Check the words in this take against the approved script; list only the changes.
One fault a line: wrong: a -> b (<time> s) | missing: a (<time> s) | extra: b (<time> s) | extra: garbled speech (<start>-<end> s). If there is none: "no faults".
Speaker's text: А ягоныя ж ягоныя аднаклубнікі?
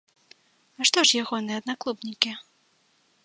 wrong: ягоныя -> што (0.9 s)